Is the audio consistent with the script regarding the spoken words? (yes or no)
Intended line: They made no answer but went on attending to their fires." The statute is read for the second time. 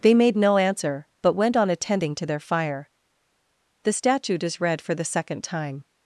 no